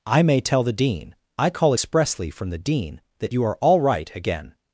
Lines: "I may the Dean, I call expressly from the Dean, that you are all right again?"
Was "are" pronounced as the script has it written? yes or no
yes